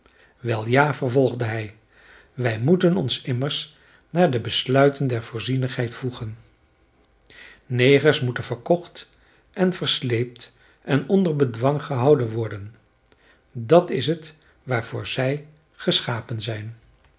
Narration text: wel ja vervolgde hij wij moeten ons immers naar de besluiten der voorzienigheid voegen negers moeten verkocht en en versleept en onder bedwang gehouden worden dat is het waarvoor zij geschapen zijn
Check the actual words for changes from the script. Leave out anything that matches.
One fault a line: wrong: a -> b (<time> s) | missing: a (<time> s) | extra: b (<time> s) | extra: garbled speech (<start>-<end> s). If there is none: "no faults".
missing: en (9.7 s)